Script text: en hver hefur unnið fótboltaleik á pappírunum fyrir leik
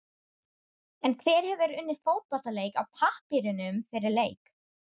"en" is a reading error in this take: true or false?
false